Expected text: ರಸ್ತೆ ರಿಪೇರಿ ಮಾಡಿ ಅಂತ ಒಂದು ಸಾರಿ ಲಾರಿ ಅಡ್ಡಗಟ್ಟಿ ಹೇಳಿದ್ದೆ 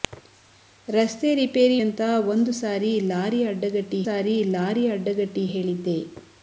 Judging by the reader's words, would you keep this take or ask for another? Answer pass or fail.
fail